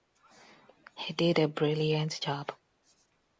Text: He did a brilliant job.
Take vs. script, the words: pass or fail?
pass